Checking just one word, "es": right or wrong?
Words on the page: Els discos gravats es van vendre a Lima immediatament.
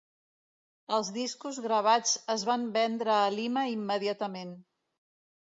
right